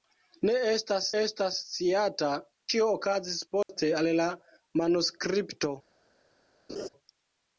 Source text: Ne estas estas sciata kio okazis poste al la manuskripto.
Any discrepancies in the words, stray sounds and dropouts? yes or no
yes